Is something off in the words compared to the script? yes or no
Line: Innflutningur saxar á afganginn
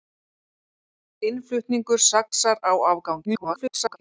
yes